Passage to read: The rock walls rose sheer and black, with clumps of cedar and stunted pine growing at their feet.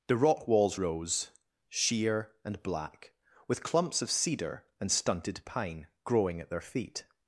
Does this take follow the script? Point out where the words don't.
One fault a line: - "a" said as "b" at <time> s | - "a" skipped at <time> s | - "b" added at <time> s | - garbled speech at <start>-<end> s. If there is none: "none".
none